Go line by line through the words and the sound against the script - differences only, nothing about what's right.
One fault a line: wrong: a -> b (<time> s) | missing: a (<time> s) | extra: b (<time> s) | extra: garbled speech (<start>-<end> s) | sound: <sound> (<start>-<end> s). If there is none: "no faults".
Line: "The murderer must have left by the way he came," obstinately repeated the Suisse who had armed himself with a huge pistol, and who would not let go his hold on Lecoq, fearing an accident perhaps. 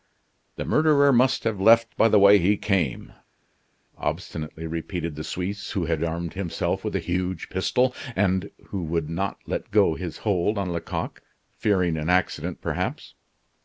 no faults